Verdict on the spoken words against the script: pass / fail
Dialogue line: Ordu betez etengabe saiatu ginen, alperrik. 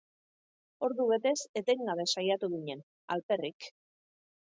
pass